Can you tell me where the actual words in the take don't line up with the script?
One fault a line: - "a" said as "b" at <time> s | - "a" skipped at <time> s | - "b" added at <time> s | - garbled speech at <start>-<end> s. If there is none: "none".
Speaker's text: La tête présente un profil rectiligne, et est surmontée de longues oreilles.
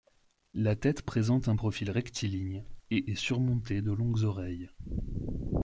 none